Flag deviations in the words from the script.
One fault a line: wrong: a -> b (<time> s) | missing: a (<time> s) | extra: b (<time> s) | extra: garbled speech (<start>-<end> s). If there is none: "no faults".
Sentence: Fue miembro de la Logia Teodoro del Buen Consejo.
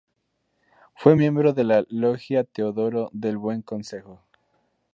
no faults